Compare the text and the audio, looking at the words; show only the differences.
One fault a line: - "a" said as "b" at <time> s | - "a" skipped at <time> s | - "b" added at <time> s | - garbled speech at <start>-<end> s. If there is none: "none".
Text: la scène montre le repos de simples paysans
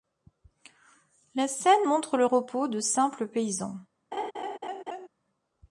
none